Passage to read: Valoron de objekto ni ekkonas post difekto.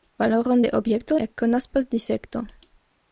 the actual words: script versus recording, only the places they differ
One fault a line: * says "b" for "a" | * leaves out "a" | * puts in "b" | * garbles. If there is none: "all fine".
* leaves out "ni"